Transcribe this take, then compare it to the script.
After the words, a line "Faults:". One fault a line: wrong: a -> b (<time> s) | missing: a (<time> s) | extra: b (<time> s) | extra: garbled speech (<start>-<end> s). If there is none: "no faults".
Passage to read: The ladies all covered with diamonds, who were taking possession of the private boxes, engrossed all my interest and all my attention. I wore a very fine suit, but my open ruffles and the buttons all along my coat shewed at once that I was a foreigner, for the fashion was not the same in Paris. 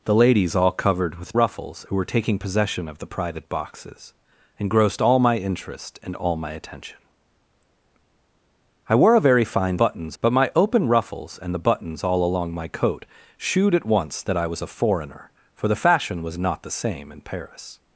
The ladies all covered with ruffles, who were taking possession of the private boxes, engrossed all my interest and all my attention. I wore a very fine buttons, but my open ruffles and the buttons all along my coat shewed at once that I was a foreigner, for the fashion was not the same in Paris.
Faults:
wrong: diamonds -> ruffles (1.3 s)
wrong: suit -> buttons (9.8 s)